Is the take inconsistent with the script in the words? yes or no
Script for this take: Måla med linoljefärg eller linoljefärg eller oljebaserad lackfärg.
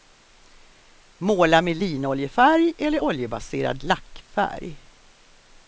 yes